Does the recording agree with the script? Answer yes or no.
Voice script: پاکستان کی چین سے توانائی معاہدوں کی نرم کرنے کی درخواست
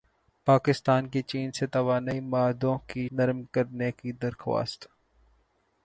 yes